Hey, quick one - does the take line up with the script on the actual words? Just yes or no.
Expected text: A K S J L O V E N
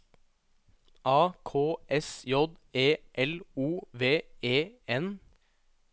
no